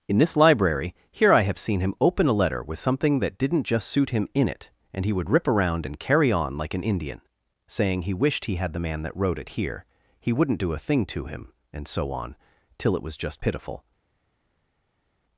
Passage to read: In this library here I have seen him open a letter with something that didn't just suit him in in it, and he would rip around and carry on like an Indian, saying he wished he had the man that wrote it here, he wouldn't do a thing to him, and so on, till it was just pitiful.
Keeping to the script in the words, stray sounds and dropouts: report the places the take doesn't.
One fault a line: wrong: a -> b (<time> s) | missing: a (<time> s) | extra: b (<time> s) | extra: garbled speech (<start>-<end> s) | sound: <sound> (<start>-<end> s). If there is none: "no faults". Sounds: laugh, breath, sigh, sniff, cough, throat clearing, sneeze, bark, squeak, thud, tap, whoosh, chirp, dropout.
missing: in (4.5 s)